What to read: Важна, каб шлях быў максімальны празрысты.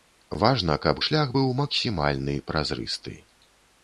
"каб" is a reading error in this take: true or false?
false